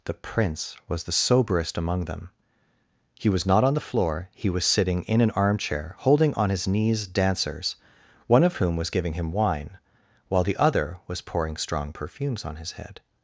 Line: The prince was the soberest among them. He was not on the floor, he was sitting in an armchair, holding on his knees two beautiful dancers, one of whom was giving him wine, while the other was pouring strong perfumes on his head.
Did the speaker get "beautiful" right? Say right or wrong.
wrong